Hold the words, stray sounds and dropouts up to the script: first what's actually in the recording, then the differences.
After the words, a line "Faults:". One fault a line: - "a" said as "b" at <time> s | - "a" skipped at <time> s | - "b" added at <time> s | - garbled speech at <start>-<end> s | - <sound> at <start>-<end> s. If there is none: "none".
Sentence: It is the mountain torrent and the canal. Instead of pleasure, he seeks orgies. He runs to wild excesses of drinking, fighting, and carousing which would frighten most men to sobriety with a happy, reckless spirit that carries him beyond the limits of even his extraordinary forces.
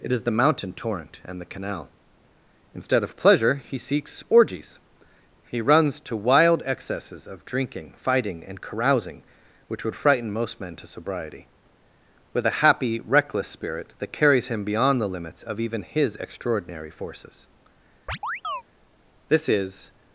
It is the mountain torrent and the canal. Instead of pleasure, he seeks orgies. He runs to wild excesses of drinking, fighting, and carousing which would frighten most men to sobriety with a happy, reckless spirit that carries him beyond the limits of even his extraordinary forces. This is
Faults:
- chirp at 18.1-18.6 s
- "This is" added at 19.3 s